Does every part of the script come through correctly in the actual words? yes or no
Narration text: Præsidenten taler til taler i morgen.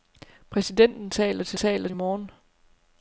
yes